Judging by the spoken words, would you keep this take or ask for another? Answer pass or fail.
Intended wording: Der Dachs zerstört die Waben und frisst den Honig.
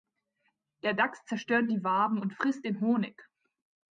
pass